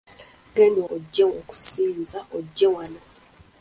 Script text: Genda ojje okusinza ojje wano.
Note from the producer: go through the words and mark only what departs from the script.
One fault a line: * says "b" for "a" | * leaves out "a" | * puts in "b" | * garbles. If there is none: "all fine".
all fine